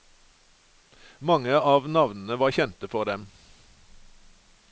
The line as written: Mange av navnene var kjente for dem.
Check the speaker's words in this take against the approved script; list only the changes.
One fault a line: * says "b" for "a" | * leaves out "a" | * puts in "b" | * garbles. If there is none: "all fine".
all fine